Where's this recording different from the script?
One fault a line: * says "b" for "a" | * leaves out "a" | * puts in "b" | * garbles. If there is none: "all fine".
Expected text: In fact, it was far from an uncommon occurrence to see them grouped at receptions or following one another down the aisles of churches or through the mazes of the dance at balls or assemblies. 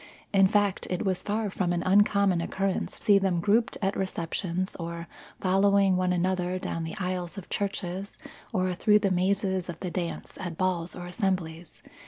* leaves out "to"